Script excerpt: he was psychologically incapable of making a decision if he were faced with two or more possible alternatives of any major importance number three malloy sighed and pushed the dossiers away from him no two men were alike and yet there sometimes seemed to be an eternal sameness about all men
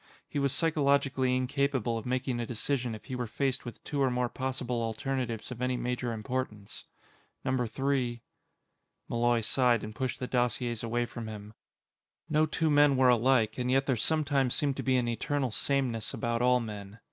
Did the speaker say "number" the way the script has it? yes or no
yes